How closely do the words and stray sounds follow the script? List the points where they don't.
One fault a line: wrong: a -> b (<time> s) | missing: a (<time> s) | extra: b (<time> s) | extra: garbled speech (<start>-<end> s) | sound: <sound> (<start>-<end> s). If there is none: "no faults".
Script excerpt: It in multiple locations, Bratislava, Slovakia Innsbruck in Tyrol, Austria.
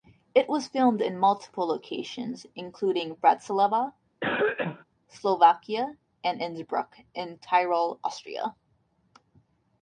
extra: was filmed (0.5 s)
extra: including (2.5 s)
sound: cough (4.2-4.8 s)
extra: and (6.2 s)